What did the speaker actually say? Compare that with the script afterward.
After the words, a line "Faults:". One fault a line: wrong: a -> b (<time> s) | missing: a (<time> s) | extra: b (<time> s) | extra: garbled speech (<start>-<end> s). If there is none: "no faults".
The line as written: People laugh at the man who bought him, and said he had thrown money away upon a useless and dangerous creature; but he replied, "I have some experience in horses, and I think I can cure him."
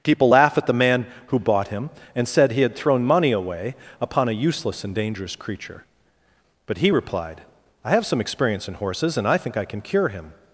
People laugh at the man who bought him, and said he had thrown money away upon a useless and dangerous creature; but he replied, "I have some experience in horses, and I think I can cure him."
Faults:
no faults